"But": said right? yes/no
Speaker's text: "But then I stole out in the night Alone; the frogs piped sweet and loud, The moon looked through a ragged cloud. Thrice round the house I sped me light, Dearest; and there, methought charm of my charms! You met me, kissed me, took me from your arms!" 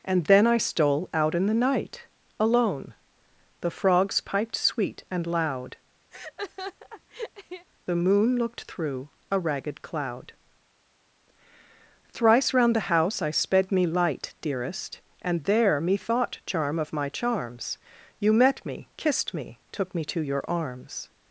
no